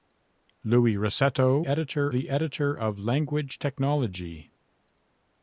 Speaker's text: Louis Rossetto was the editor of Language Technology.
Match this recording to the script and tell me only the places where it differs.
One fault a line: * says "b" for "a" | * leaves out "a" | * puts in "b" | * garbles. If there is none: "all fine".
* says "editor" for "was"